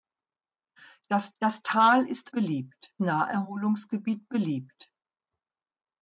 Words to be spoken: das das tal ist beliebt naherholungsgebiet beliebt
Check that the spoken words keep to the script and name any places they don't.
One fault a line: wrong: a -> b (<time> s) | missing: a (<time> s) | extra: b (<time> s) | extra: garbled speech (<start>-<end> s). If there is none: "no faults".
no faults